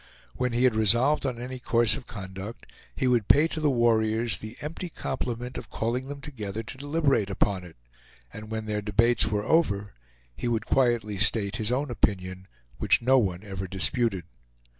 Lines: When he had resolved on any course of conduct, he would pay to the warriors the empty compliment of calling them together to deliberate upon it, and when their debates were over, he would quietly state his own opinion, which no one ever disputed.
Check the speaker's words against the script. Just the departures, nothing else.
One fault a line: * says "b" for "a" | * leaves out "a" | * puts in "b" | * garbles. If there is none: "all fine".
all fine